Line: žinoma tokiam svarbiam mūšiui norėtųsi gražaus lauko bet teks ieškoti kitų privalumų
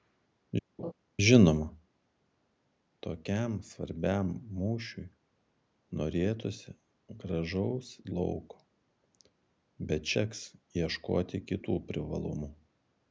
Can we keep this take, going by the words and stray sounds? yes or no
no